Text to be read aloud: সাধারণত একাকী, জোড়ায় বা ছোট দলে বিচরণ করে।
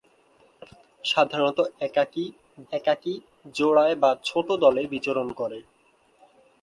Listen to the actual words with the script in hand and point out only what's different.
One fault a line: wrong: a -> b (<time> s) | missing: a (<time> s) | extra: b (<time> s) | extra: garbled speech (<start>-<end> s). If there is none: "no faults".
extra: একাকী (2.7 s)